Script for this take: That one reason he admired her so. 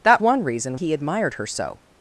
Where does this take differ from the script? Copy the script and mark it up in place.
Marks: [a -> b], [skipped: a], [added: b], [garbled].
That one reason he admired her so.